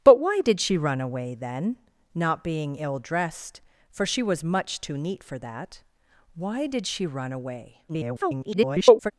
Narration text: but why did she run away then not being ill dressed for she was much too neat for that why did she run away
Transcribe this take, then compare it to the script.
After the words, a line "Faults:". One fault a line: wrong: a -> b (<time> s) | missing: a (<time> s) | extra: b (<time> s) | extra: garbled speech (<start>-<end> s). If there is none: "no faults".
but why did she run away then not being ill dressed for she was much too neat for that why did she run away [garbled]
Faults:
extra: garbled speech (7.9-9.1 s)